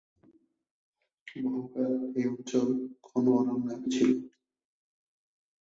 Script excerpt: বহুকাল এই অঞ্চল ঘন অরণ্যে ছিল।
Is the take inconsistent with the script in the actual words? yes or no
no